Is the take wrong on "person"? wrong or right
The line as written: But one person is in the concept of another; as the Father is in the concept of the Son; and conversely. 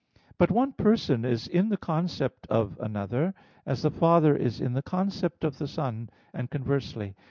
right